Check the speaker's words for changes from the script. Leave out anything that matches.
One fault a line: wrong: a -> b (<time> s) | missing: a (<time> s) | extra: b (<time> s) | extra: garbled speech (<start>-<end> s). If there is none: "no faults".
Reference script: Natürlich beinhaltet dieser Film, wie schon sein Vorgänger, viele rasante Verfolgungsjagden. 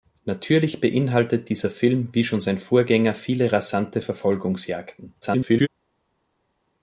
extra: garbled speech (5.2-5.7 s)